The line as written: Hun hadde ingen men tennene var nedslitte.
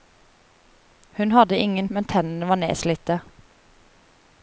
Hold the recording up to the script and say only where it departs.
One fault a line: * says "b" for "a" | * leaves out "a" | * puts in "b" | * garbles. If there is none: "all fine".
all fine